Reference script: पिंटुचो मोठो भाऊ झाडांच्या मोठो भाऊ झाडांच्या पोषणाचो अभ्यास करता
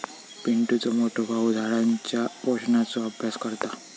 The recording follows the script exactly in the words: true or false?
false